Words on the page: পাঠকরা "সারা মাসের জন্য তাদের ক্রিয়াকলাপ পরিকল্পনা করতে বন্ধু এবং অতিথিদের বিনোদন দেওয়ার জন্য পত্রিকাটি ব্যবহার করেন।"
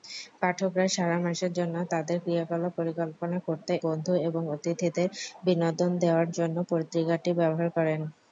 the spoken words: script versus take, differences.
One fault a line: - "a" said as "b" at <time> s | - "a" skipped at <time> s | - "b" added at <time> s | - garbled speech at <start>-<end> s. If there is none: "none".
none